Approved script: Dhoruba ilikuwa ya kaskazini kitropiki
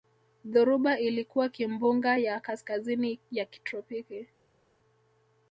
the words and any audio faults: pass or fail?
fail